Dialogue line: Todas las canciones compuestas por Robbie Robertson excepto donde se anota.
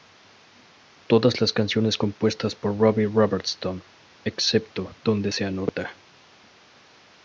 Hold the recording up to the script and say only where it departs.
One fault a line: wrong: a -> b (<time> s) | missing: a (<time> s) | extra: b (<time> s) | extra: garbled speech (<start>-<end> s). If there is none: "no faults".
no faults